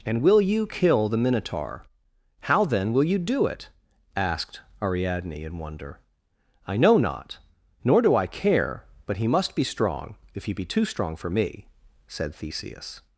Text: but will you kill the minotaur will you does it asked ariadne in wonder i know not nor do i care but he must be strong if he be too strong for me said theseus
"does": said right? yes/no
no